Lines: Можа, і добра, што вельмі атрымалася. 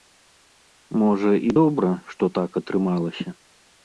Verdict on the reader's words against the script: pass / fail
fail